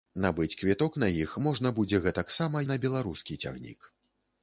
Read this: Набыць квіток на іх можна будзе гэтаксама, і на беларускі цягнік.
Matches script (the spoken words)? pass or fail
pass